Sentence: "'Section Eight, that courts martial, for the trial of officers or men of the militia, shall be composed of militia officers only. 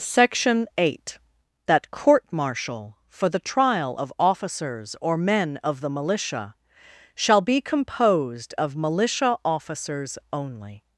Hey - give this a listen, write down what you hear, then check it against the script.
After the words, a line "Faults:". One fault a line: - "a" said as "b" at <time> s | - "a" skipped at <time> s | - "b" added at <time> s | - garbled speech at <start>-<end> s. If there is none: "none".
"'Section Eight, that court martial, for the trial of officers or men of the militia, shall be composed of militia officers only.
Faults:
- "courts" said as "court" at 1.9 s